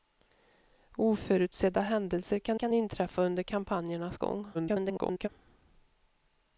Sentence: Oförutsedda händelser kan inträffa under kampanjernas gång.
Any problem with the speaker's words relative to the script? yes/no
yes